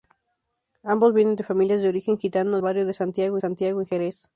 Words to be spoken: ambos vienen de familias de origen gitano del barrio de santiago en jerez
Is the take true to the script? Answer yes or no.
no